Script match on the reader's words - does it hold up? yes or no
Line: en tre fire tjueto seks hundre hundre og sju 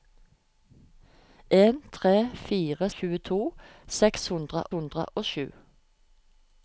yes